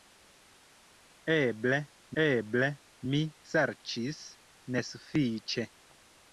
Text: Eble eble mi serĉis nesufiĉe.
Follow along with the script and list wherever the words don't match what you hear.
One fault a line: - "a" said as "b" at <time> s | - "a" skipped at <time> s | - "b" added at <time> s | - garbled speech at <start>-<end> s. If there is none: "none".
none